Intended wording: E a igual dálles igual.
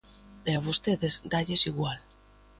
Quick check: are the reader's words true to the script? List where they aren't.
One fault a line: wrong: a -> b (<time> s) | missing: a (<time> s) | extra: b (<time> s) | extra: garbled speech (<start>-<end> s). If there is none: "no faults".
wrong: igual -> vostedes (0.7 s)